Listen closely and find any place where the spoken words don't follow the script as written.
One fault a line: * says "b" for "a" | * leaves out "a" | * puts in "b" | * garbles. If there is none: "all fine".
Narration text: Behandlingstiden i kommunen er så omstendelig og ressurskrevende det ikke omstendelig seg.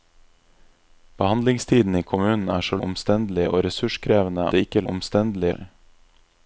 all fine